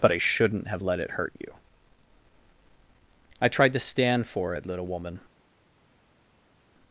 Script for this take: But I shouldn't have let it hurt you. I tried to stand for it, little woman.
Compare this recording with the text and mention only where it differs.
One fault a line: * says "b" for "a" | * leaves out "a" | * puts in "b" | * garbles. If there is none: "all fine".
all fine